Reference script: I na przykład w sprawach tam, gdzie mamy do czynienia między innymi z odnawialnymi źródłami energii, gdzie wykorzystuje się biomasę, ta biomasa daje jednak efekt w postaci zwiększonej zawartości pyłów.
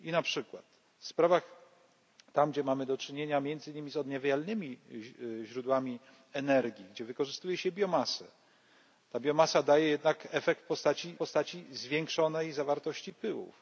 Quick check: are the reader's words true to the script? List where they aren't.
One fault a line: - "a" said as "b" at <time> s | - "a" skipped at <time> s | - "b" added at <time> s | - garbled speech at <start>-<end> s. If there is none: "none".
- "postaci" added at 11.2 s